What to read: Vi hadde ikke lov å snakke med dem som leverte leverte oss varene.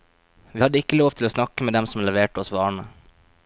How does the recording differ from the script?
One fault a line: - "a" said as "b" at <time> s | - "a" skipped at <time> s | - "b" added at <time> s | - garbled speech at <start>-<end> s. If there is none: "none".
- "til" added at 1.2 s
- "leverte" skipped at 2.4 s